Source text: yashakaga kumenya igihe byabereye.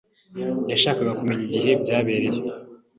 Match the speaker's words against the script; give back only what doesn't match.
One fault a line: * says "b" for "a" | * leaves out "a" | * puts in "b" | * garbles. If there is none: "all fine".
all fine